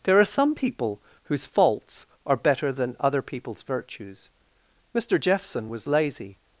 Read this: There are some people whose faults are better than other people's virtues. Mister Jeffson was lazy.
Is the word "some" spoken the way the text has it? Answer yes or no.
yes